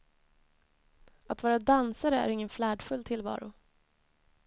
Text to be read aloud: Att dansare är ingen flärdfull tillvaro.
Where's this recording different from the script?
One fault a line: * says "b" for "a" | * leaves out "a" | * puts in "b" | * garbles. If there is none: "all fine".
* puts in "vara"